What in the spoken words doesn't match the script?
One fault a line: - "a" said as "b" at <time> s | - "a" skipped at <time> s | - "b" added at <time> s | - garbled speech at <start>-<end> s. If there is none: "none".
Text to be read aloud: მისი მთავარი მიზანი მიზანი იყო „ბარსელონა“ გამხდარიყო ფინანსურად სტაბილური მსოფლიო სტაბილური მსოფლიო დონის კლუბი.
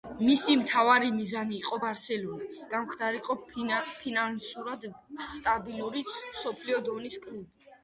- "მიზანი" skipped at 1.5 s
- "სტაბილური მსოფლიო" skipped at 6.8 s